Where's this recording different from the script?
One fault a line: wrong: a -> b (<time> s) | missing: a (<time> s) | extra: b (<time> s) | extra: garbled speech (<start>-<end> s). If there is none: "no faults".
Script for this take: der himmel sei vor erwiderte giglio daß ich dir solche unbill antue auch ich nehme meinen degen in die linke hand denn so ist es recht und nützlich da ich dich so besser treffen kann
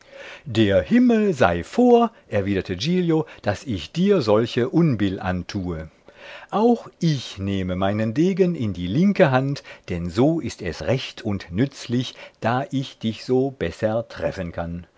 no faults